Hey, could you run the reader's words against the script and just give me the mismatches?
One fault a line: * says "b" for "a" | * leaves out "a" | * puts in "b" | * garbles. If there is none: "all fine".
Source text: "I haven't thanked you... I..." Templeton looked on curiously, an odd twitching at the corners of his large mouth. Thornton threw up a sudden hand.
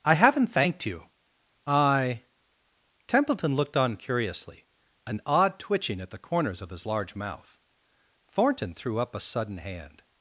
all fine